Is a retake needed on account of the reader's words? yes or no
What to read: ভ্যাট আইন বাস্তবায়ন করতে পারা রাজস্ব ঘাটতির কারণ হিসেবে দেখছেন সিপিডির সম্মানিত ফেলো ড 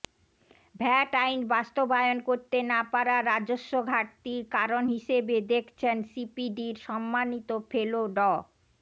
yes